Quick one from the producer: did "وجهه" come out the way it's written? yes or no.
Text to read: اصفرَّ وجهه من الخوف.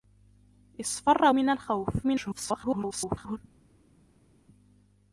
no